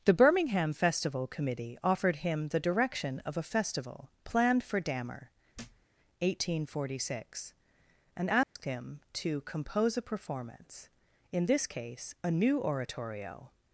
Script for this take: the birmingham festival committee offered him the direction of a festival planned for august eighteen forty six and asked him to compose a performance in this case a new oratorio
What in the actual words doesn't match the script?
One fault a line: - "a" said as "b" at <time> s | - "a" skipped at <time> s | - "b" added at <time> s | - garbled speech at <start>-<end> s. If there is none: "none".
- "august" said as "dammer" at 4.8 s